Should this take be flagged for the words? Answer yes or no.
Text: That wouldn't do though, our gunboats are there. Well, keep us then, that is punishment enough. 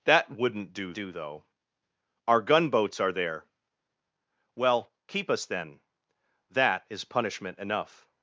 yes